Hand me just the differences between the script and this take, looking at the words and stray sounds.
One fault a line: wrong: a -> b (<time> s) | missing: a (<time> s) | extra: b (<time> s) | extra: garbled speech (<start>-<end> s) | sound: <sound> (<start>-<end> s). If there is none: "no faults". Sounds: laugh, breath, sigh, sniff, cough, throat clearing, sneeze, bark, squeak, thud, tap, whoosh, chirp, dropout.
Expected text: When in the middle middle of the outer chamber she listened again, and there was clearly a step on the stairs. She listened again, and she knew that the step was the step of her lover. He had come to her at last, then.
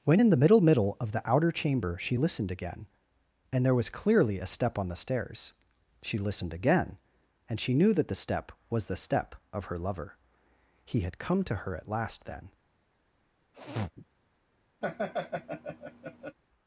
sound: sniff (13.5-14.1 s)
sound: laugh (14.8-16.4 s)